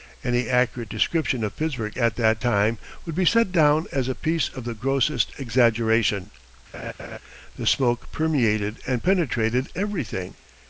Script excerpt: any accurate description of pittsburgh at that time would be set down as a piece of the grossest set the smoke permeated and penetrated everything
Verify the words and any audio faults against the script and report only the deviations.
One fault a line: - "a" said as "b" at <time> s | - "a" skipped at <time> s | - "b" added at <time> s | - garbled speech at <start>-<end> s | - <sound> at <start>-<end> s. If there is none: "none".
- "set" said as "exaggeration" at 5.4 s
- laugh at 6.7-7.2 s